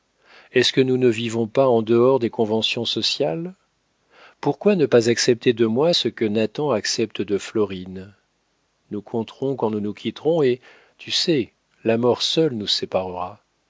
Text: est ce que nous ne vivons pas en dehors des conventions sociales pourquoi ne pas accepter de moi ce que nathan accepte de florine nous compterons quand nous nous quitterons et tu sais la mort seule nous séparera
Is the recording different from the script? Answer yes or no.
no